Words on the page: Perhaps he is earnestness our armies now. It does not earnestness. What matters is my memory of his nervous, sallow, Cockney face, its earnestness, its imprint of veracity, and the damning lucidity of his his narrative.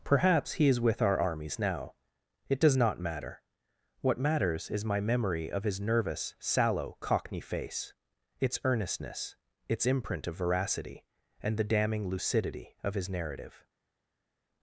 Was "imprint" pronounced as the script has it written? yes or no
yes